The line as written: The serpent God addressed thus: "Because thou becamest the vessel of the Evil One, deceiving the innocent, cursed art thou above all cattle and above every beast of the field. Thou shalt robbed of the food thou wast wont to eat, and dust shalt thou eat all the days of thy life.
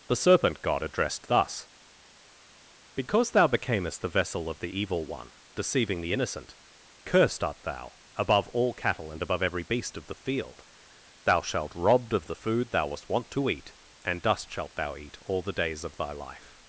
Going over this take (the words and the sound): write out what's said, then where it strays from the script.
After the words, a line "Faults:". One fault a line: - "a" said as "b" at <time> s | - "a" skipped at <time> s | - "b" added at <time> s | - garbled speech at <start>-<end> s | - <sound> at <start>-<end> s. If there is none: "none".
The serpent God addressed thus: "Because thou becamest the vessel of the Evil One, deceiving the innocent, cursed art thou above all cattle and above every beast of the field. Thou shalt robbed of the food thou wast wont to eat, and dust shalt thou eat all the days of thy life.
Faults:
none